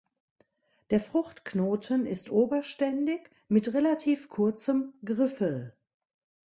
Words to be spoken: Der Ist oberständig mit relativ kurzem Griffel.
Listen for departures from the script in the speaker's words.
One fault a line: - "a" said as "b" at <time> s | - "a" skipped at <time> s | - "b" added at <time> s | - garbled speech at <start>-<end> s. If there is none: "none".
- "Fruchtknoten" added at 1.0 s